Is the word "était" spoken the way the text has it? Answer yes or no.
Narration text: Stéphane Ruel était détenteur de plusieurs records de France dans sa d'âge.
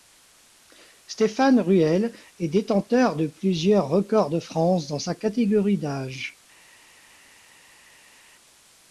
no